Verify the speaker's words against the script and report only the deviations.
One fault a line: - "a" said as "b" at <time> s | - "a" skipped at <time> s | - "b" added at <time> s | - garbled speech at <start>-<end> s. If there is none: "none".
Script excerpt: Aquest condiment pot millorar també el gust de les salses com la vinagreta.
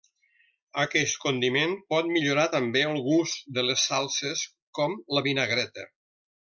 none